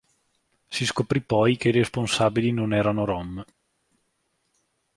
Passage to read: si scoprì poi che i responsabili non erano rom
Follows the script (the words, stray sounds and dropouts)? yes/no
yes